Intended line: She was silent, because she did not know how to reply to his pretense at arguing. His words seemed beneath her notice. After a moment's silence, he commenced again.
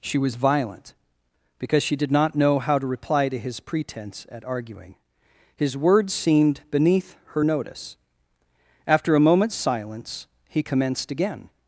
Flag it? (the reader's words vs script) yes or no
yes